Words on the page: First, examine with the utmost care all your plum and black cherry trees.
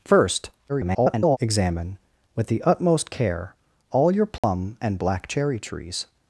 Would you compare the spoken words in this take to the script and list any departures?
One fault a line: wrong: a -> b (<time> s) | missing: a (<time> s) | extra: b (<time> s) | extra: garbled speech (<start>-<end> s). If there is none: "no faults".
extra: garbled speech (0.7-1.4 s)